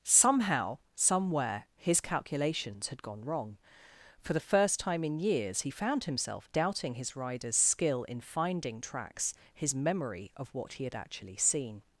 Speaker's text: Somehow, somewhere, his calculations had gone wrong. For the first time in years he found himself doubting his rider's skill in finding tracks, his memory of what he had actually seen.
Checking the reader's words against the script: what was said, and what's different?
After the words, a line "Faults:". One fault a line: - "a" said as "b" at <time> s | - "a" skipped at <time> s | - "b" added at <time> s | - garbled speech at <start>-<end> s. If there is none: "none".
Somehow, somewhere, his calculations had gone wrong. For the first time in years he found himself doubting his rider's skill in finding tracks, his memory of what he had actually seen.
Faults:
none